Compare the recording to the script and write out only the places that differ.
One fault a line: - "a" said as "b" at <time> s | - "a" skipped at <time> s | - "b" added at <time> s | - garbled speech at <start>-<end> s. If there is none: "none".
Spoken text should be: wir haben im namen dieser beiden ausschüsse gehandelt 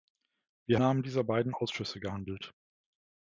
- "haben im" skipped at 0.8 s